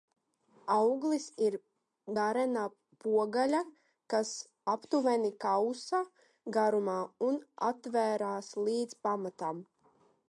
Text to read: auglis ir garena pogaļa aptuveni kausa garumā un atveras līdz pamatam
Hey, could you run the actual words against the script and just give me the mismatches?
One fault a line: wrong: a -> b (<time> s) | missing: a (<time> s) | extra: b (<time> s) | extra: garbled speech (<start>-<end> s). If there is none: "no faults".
extra: kas (4.1 s)